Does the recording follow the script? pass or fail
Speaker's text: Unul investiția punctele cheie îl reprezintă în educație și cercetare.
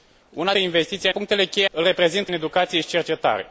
pass